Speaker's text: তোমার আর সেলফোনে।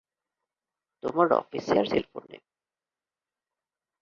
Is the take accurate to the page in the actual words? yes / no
no